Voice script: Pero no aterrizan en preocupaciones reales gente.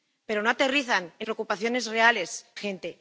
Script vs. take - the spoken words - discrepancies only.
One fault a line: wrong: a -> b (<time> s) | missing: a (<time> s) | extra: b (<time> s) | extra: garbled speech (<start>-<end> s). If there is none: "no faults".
no faults